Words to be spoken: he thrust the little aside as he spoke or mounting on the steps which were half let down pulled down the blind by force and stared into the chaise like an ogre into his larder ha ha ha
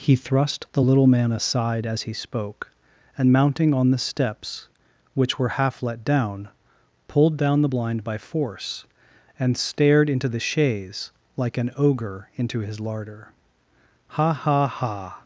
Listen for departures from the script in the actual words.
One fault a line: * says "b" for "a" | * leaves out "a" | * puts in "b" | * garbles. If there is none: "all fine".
* puts in "man"
* says "and" for "or"